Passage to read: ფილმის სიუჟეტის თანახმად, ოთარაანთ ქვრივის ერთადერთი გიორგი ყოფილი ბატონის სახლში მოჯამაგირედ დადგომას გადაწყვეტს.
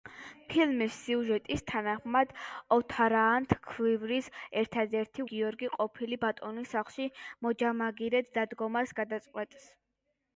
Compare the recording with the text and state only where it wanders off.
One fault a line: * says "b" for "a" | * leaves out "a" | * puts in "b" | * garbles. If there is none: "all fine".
all fine